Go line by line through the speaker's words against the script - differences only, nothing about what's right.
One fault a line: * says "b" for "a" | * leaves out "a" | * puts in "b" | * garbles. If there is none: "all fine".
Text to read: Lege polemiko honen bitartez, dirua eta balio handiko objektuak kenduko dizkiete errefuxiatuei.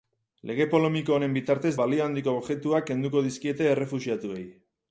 * leaves out "dirua eta"